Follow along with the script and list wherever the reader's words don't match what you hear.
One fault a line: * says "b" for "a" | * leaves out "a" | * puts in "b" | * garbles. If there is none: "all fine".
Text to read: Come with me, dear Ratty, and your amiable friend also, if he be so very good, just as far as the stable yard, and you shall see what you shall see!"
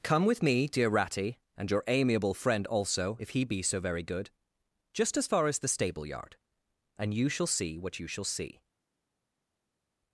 all fine